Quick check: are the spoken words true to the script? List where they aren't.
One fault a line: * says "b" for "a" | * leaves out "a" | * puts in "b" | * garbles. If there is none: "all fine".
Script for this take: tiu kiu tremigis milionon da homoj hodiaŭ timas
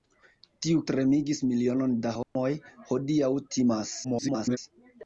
* leaves out "kiu"
* garbles